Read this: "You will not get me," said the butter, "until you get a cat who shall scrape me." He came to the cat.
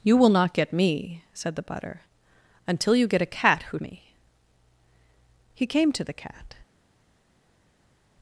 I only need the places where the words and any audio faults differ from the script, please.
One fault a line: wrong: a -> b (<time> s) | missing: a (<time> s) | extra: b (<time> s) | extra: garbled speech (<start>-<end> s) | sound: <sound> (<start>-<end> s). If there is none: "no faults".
missing: shall scrape (3.8 s)